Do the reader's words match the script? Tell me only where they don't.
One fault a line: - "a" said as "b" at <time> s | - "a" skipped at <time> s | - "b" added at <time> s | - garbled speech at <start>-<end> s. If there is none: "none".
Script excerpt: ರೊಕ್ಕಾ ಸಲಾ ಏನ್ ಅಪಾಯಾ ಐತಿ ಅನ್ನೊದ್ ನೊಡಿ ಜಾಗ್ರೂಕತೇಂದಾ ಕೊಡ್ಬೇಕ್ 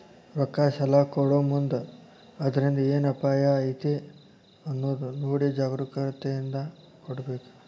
- "ಕೊಡೊಮುಂದ್ ಅದ್ರಿಂದ್" added at 1.0 s